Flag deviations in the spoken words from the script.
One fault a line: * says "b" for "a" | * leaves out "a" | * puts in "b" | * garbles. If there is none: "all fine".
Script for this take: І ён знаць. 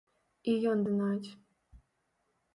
all fine